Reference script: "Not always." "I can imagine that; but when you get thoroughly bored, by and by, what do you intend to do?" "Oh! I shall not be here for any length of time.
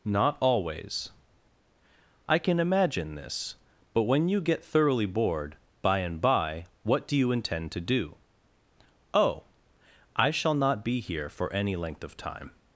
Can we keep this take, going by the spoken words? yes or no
no